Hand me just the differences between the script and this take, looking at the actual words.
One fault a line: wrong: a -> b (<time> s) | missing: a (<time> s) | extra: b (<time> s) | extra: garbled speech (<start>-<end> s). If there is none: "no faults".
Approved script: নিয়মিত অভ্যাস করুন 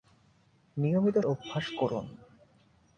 no faults